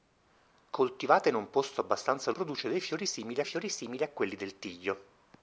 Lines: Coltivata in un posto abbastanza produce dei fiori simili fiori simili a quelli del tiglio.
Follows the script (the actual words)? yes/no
yes